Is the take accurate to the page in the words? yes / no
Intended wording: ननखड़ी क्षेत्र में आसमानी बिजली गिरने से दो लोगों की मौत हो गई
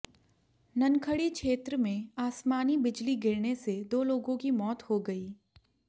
yes